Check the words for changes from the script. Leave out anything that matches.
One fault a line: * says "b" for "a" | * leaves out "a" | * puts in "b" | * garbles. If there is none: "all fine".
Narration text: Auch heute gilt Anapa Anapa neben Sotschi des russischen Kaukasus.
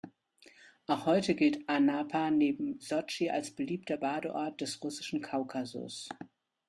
* leaves out "Anapa"
* puts in "als beliebter Badeort"